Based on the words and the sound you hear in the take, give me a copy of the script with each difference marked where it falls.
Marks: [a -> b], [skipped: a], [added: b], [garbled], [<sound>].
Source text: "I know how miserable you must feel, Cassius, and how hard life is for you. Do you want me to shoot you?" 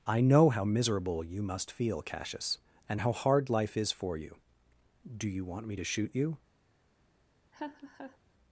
"I know how miserable you must feel, Cassius, and how hard life is for you. Do you want me to shoot you?" [laugh]